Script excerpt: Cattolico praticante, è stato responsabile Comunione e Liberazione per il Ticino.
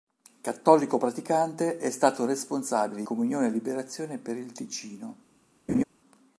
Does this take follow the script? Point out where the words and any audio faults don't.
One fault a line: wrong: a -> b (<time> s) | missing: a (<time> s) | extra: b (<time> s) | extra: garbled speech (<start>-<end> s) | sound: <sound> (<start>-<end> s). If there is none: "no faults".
sound: laugh (5.7-5.8 s)